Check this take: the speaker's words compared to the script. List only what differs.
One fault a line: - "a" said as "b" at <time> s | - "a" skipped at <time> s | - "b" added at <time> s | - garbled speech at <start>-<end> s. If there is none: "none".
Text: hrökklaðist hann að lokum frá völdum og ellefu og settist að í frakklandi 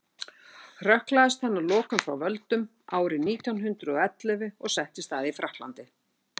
- "árið nítján hundrað" added at 3.0 s